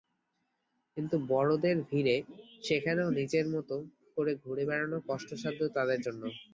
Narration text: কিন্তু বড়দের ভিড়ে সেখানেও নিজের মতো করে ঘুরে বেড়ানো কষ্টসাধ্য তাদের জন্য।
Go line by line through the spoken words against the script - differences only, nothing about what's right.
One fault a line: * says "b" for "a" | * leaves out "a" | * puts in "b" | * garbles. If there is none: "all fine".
all fine